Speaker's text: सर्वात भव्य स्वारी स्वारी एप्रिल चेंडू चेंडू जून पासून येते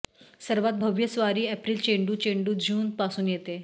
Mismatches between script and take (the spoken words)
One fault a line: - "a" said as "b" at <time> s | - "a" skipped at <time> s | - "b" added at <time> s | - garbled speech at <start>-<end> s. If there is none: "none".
- "स्वारी" skipped at 1.4 s